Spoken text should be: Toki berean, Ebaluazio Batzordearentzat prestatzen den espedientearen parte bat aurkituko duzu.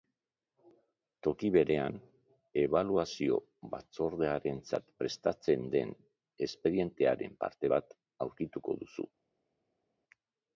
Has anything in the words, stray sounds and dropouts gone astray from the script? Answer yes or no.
no